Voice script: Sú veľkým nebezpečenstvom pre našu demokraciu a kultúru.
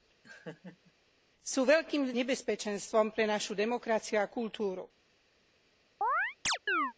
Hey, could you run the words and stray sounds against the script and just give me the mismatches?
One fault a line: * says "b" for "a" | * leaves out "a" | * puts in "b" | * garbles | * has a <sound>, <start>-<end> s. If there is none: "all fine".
* has a laugh, 0.2-0.9 s
* has a chirp, 6.0-6.9 s